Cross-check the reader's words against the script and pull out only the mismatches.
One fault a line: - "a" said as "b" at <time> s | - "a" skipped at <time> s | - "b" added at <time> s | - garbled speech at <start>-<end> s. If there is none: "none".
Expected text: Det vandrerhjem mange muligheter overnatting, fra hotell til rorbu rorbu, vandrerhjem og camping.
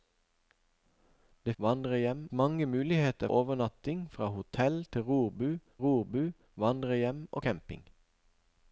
none